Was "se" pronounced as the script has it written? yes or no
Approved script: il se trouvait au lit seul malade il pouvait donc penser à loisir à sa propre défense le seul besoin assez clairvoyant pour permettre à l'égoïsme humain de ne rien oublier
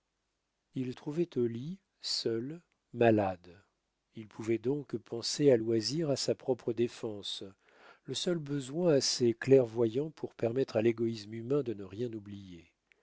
no